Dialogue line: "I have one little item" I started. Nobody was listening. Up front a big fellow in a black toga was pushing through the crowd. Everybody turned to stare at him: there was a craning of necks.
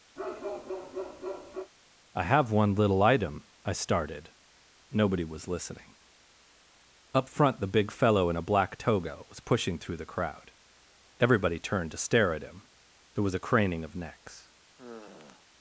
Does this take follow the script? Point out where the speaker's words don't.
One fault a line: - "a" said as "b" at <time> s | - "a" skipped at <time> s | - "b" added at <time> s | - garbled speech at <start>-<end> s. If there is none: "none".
- "a" said as "the" at 7.6 s